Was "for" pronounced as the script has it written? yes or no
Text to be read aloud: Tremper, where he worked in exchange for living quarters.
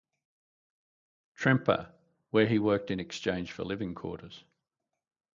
yes